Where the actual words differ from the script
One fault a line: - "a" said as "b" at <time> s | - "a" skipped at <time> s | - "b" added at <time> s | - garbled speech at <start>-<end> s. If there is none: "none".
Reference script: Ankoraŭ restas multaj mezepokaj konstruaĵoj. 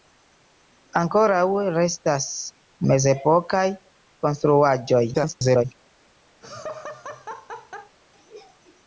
- "multaj" skipped at 2.2 s
- garbled speech at 5.1-5.6 s